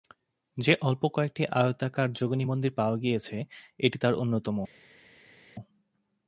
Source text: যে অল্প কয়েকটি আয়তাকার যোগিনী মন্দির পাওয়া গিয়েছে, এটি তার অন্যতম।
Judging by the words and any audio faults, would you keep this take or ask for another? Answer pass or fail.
pass